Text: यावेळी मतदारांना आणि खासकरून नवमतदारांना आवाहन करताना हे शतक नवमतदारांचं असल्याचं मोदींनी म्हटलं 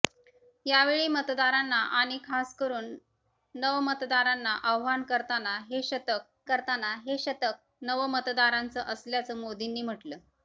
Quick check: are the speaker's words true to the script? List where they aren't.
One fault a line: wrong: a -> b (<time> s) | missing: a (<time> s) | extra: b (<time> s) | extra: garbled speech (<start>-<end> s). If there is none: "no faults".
extra: करताना हे शतक (6.4 s)